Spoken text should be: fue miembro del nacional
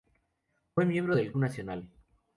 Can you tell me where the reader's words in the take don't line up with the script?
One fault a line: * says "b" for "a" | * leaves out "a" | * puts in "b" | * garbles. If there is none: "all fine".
all fine